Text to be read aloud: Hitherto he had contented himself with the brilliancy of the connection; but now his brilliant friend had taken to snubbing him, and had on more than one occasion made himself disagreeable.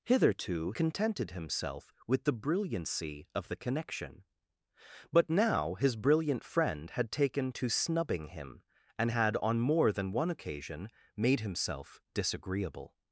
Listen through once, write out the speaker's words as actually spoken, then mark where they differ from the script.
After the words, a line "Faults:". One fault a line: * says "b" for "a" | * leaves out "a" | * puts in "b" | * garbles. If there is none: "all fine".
Hitherto contented himself with the brilliancy of the connection; but now his brilliant friend had taken to snubbing him, and had on more than one occasion made himself disagreeable.
Faults:
* leaves out "he had"